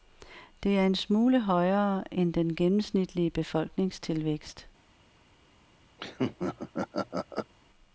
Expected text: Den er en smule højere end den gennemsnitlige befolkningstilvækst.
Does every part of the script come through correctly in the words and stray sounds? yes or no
no